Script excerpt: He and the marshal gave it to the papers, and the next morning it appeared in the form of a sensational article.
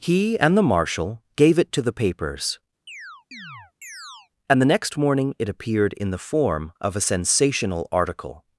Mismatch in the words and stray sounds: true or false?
true